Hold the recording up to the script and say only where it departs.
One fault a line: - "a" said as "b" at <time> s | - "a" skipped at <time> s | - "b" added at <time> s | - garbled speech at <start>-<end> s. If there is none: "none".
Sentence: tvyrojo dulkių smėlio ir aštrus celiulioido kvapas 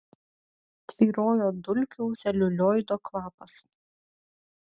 - "smėlio ir aštrus" skipped at 2.1 s